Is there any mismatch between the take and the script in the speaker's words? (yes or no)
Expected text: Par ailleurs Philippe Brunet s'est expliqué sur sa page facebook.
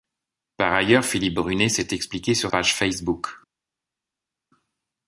yes